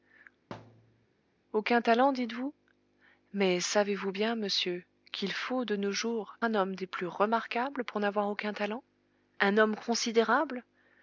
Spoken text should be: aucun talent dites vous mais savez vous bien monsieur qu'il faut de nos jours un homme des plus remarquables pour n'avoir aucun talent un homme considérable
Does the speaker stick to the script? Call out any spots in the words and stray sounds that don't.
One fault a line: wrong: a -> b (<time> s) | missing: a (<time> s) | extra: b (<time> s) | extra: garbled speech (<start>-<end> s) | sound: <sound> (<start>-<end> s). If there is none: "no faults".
sound: thud (0.5-1.1 s)